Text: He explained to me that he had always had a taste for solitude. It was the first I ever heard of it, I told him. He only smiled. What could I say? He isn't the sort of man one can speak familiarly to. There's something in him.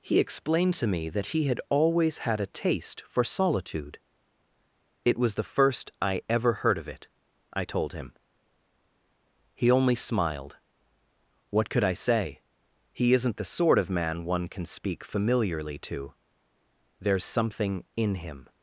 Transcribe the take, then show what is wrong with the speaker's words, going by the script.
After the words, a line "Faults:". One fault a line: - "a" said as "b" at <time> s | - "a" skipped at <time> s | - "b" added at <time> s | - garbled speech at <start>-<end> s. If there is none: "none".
He explained to me that he had always had a taste for solitude. It was the first I ever heard of it, I told him. He only smiled. What could I say? He isn't the sort of man one can speak familiarly to. There's something in him.
Faults:
none